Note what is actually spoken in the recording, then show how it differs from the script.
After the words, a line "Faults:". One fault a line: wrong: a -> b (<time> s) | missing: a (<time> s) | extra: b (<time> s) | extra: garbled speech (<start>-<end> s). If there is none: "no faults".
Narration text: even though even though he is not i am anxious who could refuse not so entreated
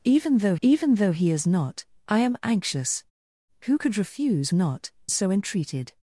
even though even though he is not i am anxious who could refuse not so entreated
Faults:
no faults